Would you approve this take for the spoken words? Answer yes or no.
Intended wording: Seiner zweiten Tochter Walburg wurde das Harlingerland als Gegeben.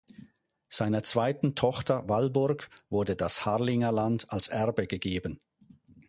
no